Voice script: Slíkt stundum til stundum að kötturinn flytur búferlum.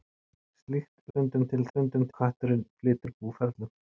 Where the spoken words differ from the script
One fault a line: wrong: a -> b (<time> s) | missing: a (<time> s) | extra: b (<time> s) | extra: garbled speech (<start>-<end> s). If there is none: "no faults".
no faults